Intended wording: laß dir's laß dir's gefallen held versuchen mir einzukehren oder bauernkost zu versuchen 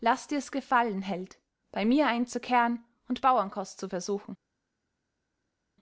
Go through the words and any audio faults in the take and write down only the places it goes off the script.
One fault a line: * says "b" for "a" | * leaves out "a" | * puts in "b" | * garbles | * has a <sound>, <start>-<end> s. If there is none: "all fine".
* leaves out "laß dir's"
* says "bei" for "versuchen"
* says "und" for "oder"